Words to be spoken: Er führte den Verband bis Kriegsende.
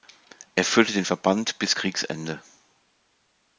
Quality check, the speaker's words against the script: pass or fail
pass